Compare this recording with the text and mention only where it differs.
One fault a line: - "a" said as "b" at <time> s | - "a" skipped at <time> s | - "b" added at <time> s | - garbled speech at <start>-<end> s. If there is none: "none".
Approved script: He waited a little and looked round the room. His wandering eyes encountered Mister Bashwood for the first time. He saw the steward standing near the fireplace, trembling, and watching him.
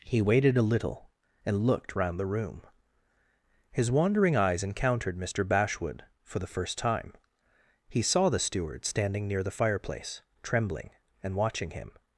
none